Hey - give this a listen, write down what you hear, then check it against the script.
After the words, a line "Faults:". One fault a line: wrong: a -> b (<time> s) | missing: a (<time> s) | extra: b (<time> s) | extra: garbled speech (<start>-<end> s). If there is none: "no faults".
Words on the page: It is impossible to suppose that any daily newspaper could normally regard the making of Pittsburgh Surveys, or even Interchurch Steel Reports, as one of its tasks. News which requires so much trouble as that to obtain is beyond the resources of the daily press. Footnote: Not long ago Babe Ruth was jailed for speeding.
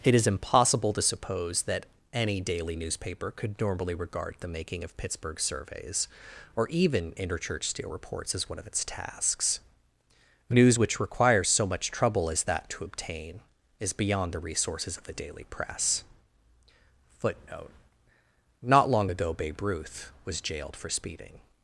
It is impossible to suppose that any daily newspaper could normally regard the making of Pittsburgh Surveys, or even Interchurch Steel Reports, as one of its tasks. News which requires so much trouble as that to obtain is beyond the resources of the daily press. Footnote: Not long ago Babe Ruth was jailed for speeding.
Faults:
no faults